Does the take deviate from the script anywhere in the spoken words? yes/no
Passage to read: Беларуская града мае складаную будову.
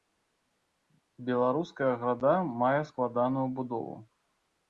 no